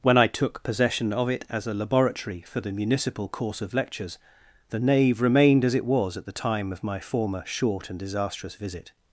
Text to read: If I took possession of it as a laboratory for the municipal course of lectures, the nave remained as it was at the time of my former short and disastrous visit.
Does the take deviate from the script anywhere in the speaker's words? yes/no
yes